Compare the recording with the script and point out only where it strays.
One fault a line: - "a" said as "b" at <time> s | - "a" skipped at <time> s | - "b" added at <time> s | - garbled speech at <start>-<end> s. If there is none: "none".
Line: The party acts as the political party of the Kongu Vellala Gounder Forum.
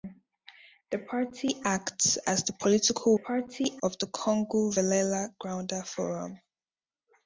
none